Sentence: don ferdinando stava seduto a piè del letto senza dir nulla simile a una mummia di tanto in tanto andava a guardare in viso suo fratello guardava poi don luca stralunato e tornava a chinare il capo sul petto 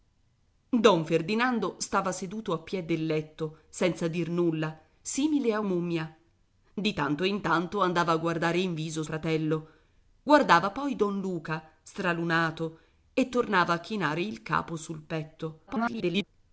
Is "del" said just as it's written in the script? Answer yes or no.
yes